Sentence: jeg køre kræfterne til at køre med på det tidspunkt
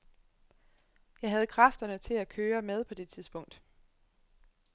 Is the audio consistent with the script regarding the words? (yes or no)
no